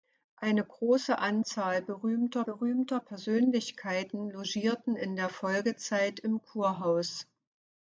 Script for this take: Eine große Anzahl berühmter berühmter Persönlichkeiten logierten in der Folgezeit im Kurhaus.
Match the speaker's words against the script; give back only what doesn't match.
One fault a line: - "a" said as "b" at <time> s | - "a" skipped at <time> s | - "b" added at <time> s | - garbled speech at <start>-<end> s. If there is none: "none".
none